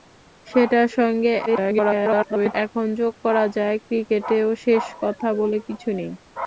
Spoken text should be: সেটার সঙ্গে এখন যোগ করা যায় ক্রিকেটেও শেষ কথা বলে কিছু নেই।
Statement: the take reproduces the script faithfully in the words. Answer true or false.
false